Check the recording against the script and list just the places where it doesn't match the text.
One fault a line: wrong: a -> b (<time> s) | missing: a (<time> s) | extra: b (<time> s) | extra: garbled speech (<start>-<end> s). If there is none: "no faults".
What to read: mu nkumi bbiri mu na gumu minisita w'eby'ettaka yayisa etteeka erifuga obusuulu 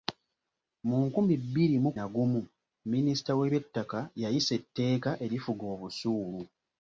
no faults